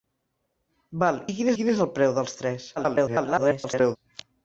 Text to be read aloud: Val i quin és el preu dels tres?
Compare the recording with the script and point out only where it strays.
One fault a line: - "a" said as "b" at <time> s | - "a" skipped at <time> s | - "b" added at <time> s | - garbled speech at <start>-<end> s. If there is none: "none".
- "quin" added at 1.6 s
- garbled speech at 2.8-4.0 s